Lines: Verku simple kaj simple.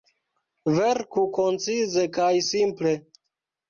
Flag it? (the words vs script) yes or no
yes